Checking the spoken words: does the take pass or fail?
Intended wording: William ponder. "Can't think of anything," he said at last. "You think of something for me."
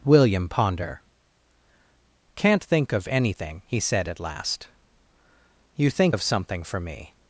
pass